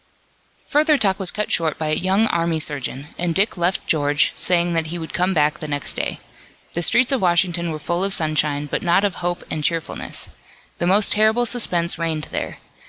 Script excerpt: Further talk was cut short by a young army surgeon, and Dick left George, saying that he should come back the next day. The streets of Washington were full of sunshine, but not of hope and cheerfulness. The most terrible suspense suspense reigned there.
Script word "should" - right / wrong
wrong